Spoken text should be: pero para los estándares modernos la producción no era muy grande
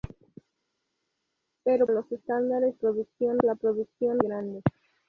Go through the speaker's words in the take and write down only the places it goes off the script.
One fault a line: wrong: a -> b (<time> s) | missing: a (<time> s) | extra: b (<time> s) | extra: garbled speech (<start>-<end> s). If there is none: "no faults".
missing: para (1.9 s)
wrong: modernos -> producción (2.7 s)
missing: no era muy (4.2 s)